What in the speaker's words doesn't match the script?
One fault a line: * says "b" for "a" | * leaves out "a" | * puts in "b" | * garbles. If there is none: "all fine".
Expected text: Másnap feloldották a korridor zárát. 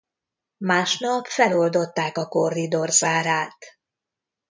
all fine